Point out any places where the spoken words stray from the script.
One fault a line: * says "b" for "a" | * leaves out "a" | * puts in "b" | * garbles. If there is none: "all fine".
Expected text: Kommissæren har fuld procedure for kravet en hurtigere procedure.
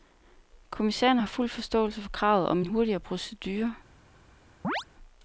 * says "forståelse" for "procedure"
* puts in "om"